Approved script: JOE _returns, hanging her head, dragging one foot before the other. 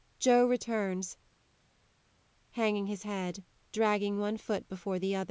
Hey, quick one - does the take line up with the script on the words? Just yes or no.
no